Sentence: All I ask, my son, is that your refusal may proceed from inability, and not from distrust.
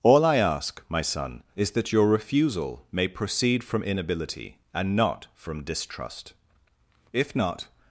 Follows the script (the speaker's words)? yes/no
no